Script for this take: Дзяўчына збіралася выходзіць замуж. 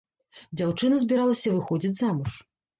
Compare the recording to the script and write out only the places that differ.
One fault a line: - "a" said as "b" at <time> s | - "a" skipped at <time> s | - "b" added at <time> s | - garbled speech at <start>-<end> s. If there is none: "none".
none